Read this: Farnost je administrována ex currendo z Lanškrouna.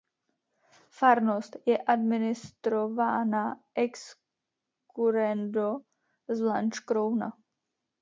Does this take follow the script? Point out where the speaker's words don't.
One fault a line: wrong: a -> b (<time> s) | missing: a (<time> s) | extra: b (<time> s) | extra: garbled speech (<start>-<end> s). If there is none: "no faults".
no faults